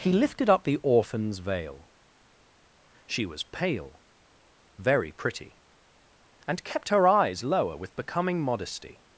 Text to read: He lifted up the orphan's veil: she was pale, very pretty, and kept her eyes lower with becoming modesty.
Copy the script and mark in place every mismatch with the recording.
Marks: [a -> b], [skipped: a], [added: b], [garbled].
He lifted up the orphan's veil: she was pale, very pretty, and kept her eyes lower with becoming modesty.